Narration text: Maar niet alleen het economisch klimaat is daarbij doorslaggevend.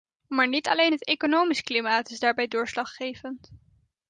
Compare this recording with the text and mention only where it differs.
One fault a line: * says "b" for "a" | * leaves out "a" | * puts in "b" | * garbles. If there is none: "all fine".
all fine